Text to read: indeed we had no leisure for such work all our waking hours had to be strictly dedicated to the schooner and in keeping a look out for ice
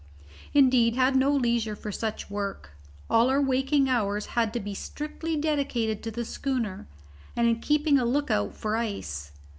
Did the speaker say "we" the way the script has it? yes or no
no